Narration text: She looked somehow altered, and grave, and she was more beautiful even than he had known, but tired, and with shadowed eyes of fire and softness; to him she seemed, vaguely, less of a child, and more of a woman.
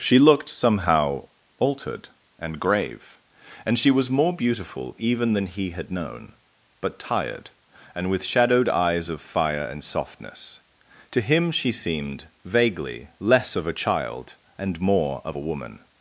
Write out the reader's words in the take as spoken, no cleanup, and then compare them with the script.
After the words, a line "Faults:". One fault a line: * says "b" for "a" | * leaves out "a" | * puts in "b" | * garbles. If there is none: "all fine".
She looked somehow altered, and grave, and she was more beautiful even than he had known, but tired, and with shadowed eyes of fire and softness; to him she seemed, vaguely, less of a child, and more of a woman.
Faults:
all fine